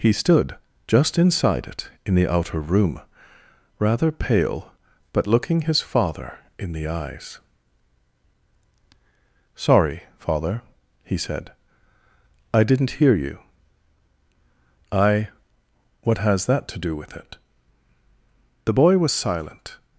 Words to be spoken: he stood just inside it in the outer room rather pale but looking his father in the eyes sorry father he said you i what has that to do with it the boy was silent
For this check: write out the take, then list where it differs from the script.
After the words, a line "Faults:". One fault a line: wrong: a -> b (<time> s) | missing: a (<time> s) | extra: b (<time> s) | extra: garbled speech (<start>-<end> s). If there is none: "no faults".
he stood just inside it in the outer room rather pale but looking his father in the eyes sorry father he said i didn't hear you i what has that to do with it the boy was silent
Faults:
extra: i didn't hear (12.5 s)